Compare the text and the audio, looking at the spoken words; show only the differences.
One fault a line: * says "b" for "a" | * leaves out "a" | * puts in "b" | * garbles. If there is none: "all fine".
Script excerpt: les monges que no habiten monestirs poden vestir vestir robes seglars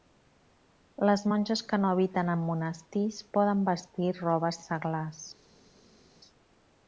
* puts in "en"
* leaves out "vestir"